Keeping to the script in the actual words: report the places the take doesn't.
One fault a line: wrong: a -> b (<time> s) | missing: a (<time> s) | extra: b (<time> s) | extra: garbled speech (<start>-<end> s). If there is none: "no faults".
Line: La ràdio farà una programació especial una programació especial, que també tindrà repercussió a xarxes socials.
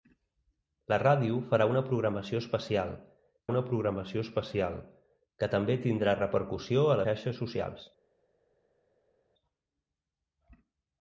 no faults